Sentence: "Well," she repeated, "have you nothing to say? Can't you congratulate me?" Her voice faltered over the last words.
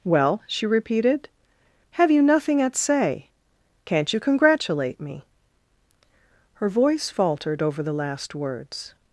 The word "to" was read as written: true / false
false